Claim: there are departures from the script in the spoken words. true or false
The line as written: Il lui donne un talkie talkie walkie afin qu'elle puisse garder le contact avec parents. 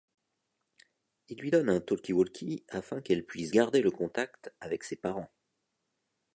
true